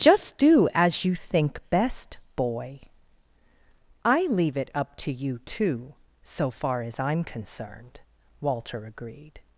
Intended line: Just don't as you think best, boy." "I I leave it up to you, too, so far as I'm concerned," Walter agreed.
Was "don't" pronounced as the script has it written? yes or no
no